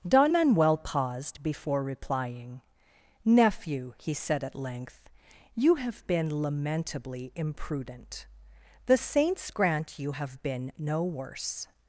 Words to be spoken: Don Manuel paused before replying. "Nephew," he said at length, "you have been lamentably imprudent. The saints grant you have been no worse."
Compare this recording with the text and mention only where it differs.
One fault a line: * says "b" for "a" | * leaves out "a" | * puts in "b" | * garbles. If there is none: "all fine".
all fine